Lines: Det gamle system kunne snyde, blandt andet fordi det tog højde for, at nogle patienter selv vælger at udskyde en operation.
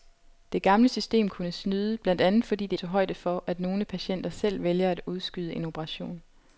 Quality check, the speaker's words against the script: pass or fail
pass